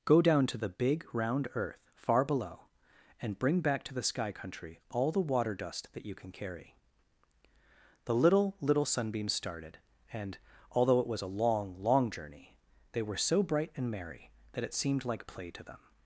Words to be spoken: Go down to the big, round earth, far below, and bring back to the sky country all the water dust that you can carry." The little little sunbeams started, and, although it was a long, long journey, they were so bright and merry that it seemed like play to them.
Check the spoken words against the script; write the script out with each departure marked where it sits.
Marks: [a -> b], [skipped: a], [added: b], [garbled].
Go down to the big, round earth, far below, and bring back to the sky country all the water dust that you can carry." The little little sunbeams started, and, although it was a long, long journey, they were so bright and merry that it seemed like play to them.